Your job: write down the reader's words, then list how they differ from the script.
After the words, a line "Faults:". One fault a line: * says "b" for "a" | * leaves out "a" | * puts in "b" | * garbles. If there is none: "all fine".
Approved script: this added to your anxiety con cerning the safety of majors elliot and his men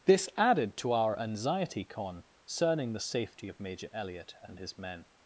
this added to our anxiety con cerning the safety of major elliot and his men
Faults:
* says "our" for "your"
* says "major" for "majors"